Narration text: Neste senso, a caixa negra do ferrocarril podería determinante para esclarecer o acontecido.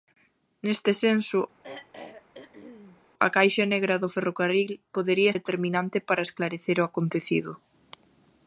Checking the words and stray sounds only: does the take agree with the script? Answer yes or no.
no